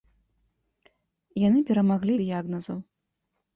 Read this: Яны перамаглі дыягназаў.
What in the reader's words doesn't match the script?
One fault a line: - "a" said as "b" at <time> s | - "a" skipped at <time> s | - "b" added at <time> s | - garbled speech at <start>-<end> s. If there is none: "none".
none